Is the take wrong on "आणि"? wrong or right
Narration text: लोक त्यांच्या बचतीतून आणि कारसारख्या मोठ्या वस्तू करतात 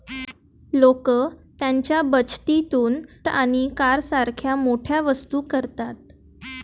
right